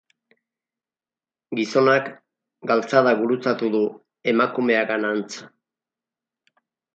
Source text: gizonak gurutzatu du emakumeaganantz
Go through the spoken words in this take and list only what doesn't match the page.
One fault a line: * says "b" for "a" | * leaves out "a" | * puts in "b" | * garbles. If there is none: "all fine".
* puts in "galtzada"